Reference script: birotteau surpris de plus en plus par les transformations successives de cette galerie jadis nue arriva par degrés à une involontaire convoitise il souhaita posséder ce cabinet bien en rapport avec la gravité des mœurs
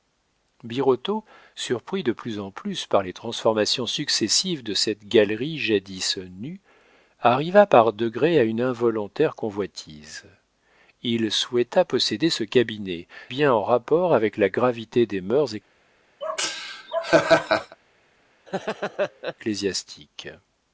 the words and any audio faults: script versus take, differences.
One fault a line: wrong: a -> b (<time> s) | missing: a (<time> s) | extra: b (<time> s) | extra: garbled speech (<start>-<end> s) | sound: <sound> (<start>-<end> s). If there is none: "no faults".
sound: laugh (16.2-17.8 s)
sound: laugh (18.5-19.3 s)